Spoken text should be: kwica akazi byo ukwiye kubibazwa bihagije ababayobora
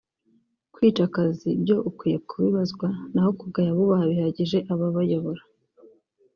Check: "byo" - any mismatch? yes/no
no